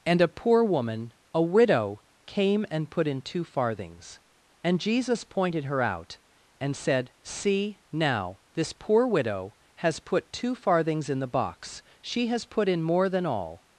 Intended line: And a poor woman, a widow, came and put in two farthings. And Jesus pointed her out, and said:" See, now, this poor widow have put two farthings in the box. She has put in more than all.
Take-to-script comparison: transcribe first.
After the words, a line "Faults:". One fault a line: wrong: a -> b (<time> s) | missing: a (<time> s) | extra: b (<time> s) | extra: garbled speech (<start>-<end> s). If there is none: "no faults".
And a poor woman, a widow, came and put in two farthings. And Jesus pointed her out, and said:" See, now, this poor widow has put two farthings in the box. She has put in more than all.
Faults:
wrong: have -> has (9.8 s)